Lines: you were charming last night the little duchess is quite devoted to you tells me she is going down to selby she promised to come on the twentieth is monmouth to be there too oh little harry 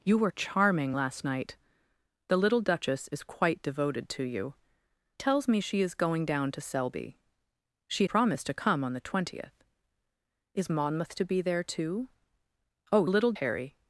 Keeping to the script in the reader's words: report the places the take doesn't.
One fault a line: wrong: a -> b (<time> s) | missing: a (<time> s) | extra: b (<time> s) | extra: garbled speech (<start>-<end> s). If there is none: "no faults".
no faults